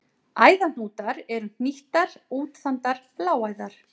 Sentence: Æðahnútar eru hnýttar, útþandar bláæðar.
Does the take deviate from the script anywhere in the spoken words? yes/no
no